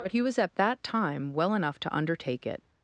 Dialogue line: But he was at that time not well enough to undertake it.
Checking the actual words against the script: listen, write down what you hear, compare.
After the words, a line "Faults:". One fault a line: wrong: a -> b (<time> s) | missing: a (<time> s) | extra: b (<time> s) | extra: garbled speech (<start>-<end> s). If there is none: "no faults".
But he was at that time well enough to undertake it.
Faults:
missing: not (1.3 s)